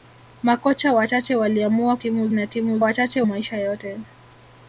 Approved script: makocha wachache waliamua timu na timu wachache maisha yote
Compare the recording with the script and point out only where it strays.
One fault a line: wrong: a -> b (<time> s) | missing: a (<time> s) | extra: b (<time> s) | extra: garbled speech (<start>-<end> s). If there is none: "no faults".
no faults